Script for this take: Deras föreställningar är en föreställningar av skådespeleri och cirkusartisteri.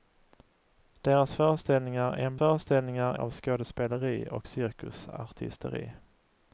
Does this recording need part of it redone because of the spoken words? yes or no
no